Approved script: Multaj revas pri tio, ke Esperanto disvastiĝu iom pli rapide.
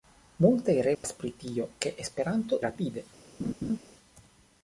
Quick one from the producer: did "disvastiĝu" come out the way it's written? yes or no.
no